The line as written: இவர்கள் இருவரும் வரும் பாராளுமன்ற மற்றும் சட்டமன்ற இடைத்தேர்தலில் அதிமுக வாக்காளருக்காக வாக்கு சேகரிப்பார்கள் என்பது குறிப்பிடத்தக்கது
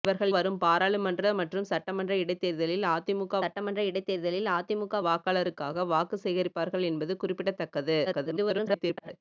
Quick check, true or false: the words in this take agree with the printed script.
false